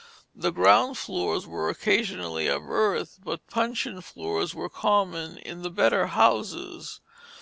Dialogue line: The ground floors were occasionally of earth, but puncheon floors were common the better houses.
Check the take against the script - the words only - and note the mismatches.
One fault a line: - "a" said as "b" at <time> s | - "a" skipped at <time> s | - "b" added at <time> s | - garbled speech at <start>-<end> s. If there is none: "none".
- "in" added at 5.4 s